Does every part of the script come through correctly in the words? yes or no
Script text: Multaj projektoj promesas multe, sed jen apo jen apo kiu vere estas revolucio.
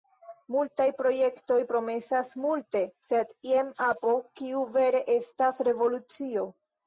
no